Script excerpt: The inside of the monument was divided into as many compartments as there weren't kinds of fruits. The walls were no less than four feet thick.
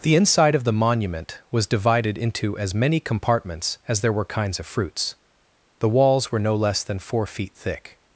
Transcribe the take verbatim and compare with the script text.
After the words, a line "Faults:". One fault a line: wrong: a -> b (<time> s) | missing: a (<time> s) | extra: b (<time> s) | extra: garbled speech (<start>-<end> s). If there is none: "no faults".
The inside of the monument was divided into as many compartments as there were kinds of fruits. The walls were no less than four feet thick.
Faults:
wrong: weren't -> were (4.1 s)